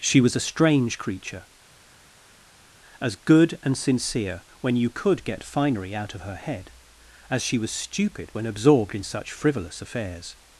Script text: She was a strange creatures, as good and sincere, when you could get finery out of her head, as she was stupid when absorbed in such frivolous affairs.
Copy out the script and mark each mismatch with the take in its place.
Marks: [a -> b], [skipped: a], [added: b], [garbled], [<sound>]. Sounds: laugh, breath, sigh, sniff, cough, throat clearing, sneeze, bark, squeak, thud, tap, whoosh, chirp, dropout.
She was a strange [creatures, -> creature] as good and sincere, when you could get finery out of her head, as she was stupid when absorbed in such frivolous affairs.